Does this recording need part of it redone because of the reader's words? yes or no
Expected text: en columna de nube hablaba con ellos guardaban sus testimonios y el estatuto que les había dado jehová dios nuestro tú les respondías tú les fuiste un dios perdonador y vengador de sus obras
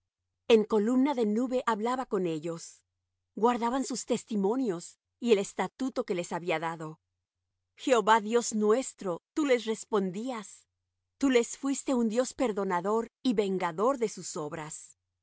no